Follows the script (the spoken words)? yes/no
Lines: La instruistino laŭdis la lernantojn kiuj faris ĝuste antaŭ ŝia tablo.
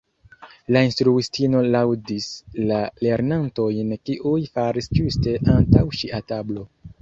yes